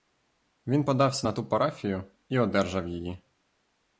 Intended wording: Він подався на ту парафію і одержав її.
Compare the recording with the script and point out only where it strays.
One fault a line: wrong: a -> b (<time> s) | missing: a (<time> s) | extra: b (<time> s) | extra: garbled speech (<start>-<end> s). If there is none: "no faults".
no faults